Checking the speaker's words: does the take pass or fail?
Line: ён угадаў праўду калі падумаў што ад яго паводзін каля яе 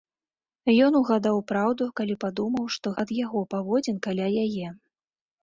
pass